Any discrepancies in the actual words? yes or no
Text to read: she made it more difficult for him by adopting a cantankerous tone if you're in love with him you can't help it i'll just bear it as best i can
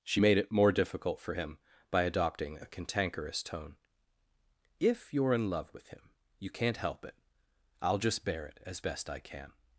no